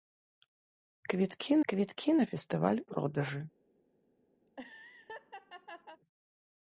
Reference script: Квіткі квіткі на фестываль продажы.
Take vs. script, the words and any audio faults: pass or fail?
fail